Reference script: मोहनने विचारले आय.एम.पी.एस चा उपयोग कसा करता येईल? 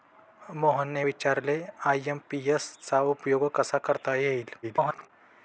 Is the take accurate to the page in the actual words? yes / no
no